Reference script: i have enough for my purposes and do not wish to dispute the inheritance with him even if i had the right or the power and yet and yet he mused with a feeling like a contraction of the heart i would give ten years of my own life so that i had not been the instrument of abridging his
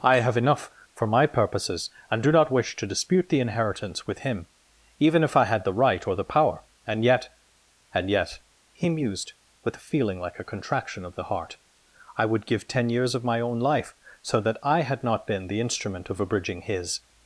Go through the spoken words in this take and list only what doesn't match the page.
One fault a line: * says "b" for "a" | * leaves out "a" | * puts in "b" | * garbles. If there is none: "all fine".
all fine